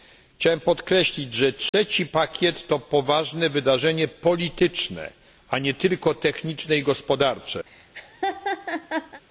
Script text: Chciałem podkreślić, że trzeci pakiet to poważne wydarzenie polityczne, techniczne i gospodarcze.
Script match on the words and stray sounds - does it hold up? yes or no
no